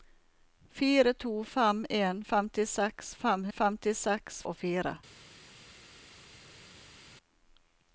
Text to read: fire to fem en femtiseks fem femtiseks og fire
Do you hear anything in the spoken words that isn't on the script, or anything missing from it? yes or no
no